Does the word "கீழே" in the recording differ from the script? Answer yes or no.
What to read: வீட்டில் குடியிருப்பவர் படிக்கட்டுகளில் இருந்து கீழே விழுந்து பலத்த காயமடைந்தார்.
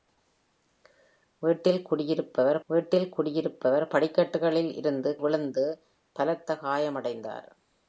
yes